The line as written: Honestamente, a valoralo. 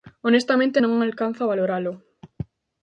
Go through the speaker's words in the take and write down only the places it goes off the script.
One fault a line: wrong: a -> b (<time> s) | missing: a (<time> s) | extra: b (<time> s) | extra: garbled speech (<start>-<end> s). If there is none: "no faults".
extra: non alcanzo (0.8 s)